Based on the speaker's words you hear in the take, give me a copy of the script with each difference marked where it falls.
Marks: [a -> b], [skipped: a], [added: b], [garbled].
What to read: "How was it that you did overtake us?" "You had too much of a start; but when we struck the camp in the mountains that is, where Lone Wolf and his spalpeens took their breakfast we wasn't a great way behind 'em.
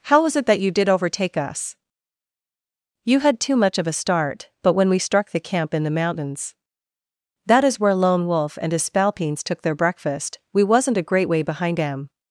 "How was it that you did overtake us?" "You had too much of a start; but when we struck the camp in the mountains that is, where Lone Wolf and his spalpeens took their breakfast we wasn't a great way behind 'em.